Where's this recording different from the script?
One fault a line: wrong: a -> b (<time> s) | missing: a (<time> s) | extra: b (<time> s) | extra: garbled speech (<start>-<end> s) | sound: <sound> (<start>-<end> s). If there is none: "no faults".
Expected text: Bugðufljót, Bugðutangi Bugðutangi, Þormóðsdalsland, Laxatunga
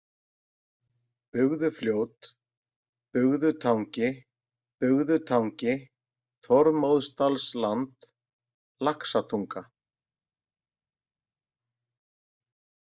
no faults